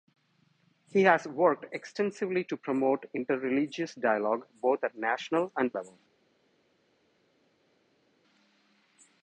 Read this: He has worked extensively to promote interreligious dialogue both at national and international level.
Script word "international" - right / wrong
wrong